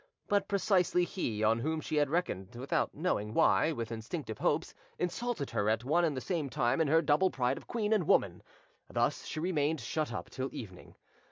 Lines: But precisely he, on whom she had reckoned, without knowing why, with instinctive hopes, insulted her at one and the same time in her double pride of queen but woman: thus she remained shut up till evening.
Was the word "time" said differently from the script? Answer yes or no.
no